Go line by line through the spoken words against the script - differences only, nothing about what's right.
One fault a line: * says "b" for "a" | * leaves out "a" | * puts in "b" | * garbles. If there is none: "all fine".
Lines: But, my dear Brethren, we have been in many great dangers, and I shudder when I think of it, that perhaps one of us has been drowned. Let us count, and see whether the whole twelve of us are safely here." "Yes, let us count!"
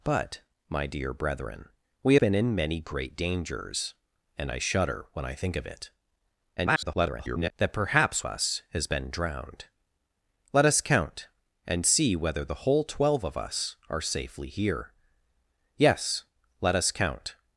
* leaves out "have"
* garbles
* leaves out "one of"